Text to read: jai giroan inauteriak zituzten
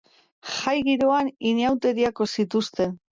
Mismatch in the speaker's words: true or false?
false